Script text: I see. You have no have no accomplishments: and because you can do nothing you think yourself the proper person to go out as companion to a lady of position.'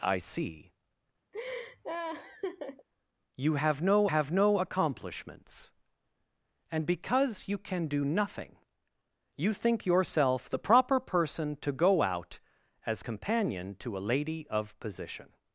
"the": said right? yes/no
yes